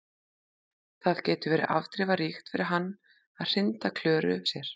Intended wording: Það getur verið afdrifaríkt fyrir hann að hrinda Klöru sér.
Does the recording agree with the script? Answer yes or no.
yes